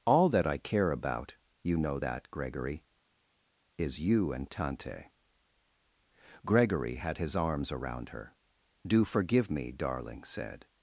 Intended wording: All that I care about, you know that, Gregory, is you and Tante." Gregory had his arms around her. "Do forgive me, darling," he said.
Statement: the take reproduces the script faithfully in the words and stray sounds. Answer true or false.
false